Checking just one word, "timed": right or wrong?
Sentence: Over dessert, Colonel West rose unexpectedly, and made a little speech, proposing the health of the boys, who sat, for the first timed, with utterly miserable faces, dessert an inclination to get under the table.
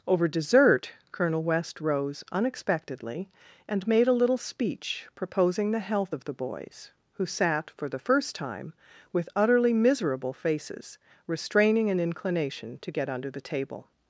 wrong